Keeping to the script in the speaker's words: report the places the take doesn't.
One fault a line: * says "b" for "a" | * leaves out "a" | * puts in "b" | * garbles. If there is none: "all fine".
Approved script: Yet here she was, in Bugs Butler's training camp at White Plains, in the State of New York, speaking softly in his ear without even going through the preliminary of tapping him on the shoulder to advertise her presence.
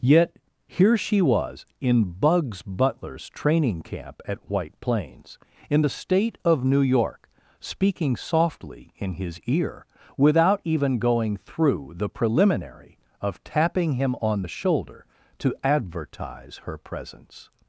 all fine